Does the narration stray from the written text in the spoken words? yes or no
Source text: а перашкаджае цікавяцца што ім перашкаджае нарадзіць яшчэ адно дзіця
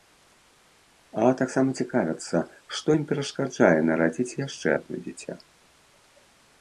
yes